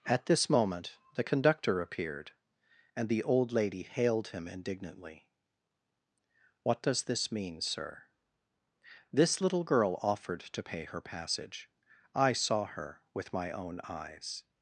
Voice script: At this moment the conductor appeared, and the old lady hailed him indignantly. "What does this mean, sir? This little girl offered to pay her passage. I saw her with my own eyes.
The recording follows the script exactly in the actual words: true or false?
true